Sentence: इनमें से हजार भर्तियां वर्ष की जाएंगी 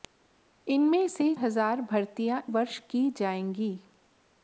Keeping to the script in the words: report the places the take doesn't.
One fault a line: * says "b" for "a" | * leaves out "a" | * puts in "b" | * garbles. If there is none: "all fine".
all fine